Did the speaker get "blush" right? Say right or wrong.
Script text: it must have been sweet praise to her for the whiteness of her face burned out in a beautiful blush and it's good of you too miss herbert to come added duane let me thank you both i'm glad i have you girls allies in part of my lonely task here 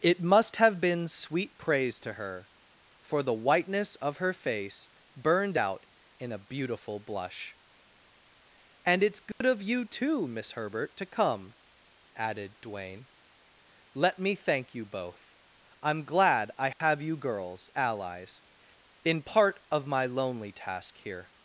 right